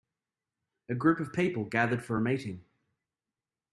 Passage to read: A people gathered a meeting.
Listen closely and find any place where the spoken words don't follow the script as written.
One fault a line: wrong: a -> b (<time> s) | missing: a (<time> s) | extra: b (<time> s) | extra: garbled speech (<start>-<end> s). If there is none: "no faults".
extra: group of (0.9 s)
extra: for (2.0 s)